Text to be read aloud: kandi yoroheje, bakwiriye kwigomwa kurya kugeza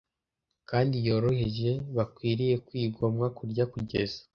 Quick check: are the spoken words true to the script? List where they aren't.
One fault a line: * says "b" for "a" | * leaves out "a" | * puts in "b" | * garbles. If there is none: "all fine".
all fine